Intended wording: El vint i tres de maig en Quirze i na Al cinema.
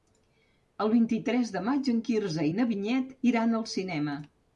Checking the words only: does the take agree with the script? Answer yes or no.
no